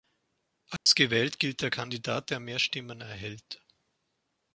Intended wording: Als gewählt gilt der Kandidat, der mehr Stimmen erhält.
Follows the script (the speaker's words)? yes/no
yes